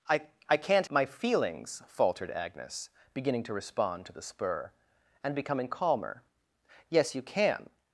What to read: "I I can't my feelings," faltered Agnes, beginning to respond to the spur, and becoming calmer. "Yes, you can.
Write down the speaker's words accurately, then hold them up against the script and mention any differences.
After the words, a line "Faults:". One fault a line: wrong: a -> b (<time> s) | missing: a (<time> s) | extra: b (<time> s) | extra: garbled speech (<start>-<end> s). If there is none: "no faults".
"I I can't my feelings," faltered Agnes, beginning to respond to the spur, and becoming calmer. "Yes, you can.
Faults:
no faults